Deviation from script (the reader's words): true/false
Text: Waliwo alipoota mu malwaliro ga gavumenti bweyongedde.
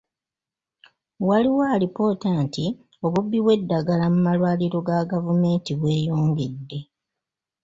true